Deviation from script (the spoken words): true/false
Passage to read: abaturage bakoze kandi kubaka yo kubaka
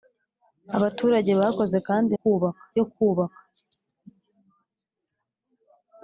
false